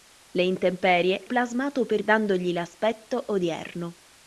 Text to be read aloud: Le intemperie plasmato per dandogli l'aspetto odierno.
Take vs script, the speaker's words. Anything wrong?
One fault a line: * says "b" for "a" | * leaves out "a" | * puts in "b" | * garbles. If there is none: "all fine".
all fine